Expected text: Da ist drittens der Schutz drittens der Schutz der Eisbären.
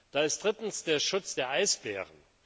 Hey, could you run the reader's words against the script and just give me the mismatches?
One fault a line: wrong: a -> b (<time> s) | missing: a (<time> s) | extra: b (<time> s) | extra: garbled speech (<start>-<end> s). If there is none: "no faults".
missing: drittens der Schutz (1.4 s)